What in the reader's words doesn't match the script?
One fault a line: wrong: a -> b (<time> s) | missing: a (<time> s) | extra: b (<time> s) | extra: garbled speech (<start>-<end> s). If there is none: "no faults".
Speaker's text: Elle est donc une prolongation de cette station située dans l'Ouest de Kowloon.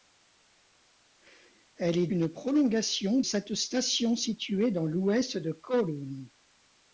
missing: donc (2.1 s)
missing: de (3.2 s)